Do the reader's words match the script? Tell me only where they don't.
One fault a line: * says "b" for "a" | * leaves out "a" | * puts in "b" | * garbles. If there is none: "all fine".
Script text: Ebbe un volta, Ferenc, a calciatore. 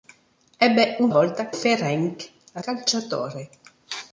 all fine